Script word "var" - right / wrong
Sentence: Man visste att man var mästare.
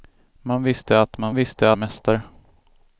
wrong